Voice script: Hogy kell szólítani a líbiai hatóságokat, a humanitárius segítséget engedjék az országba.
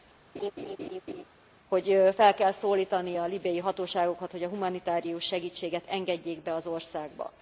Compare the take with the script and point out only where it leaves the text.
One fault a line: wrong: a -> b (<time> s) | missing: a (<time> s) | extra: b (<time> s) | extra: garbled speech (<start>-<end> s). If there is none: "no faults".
extra: fel (2.1 s)
extra: hogy (4.3 s)
extra: be (6.4 s)